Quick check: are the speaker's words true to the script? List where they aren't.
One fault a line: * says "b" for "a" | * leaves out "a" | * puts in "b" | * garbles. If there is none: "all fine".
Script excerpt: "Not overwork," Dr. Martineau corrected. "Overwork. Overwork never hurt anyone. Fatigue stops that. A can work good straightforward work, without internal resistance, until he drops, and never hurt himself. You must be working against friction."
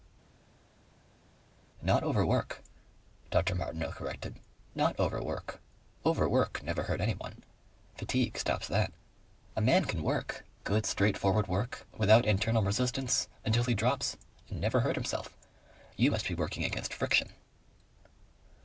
* puts in "Not"
* puts in "man"